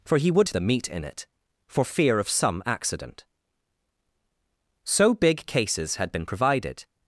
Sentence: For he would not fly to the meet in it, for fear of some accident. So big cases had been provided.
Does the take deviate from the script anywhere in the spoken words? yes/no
yes